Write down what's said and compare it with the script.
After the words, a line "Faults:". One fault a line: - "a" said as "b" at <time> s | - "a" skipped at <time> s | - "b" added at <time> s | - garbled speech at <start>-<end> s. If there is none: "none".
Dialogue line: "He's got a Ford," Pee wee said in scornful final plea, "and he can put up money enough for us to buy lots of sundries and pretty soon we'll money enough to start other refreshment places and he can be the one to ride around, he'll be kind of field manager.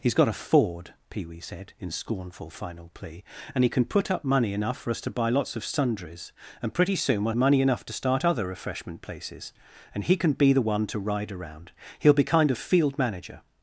"He's got a Ford," Pee wee said in scornful final plea, "and he can put up money enough for us to buy lots of sundries and pretty soon we'll money enough to start other refreshment places and he can be the one to ride around, he'll be kind of field manager.
Faults:
none